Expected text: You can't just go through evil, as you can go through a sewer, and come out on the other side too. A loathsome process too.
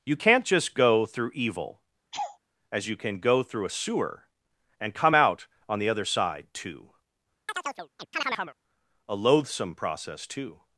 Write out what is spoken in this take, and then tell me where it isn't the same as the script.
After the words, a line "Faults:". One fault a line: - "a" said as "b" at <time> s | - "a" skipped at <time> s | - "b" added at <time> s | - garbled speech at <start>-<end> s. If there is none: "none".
You can't just go through evil, as you can go through a sewer, and come out on the other side too. A loathsome process too.
Faults:
none